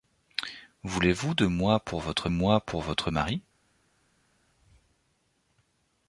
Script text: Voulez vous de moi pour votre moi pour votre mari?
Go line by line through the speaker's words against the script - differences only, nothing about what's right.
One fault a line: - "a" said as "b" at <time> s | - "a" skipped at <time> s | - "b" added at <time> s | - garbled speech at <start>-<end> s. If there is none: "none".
none